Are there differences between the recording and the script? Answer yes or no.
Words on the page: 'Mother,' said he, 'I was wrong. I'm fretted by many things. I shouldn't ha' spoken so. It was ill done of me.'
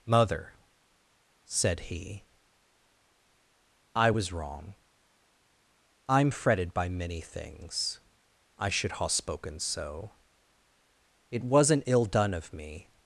yes